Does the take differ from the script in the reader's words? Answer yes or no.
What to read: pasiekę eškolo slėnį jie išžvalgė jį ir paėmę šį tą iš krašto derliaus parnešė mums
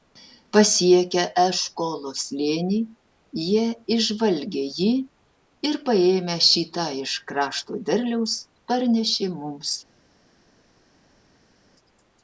no